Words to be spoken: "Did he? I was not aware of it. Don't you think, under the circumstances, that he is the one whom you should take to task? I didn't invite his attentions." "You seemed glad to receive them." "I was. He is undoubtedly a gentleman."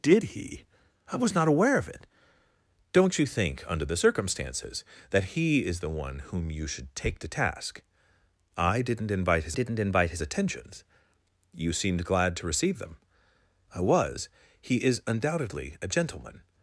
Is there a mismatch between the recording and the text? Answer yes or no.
yes